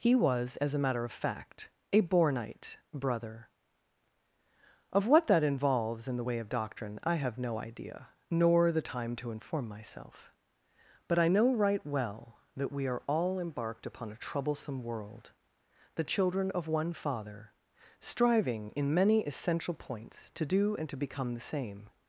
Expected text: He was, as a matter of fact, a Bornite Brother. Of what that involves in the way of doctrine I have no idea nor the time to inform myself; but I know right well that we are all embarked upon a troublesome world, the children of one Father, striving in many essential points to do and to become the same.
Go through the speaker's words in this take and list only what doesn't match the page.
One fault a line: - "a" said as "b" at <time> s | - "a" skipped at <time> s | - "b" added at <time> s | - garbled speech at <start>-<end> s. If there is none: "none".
none